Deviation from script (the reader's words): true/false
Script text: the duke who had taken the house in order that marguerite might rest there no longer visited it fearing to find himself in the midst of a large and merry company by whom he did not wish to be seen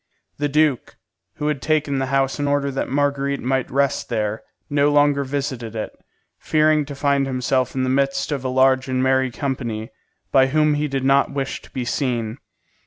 false